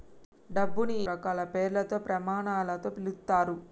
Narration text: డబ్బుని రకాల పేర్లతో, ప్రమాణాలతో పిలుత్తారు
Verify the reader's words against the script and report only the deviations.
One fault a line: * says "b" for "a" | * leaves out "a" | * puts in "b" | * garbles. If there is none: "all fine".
all fine